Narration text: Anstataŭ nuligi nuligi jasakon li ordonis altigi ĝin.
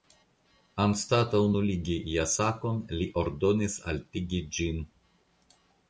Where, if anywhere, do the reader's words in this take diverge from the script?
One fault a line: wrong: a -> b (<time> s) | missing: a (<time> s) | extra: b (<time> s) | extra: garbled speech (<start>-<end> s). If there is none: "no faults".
missing: nuligi (2.0 s)